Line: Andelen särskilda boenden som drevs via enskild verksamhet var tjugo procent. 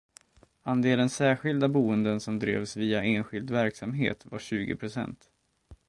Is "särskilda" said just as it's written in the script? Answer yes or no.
yes